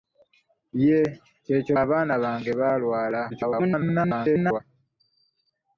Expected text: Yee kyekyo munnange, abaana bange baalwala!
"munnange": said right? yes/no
no